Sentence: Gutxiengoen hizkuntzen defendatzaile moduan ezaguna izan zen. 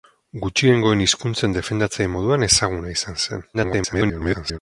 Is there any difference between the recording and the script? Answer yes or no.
yes